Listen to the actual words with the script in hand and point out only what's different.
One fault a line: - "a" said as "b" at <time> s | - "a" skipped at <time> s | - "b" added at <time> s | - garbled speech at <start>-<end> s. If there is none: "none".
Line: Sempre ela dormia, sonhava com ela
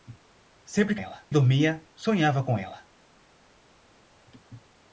none